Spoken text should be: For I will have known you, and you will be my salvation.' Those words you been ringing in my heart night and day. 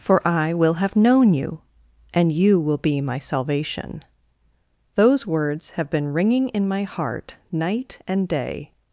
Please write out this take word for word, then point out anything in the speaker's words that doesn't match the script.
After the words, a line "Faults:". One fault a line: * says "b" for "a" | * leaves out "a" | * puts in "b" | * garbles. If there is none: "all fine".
For I will have known you, and you will be my salvation.' Those words have been ringing in my heart night and day.
Faults:
* says "have" for "you"